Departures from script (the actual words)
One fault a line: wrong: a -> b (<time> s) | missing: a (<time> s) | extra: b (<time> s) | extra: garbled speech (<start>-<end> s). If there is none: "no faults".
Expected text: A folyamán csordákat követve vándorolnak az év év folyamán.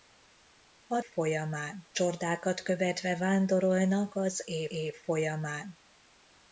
no faults